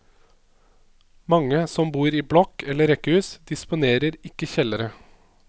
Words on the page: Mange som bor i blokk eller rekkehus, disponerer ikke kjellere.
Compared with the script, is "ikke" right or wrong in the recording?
right